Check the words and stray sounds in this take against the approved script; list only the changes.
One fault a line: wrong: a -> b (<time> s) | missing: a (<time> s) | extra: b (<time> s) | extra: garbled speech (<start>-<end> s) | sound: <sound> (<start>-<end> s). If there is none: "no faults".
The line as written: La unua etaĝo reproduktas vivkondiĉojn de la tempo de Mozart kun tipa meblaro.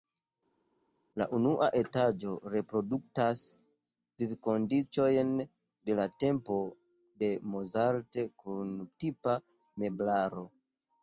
no faults